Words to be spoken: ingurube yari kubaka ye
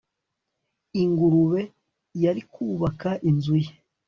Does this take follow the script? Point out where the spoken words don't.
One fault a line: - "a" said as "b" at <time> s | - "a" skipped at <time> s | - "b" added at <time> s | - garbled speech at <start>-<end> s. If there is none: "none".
- "inzu" added at 3.3 s